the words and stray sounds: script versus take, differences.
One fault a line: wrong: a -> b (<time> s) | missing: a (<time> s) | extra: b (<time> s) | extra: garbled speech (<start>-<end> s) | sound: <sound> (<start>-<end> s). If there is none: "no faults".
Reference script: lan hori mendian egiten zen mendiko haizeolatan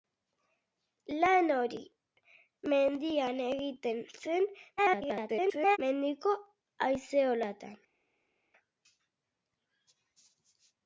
extra: garbled speech (4.8-5.8 s)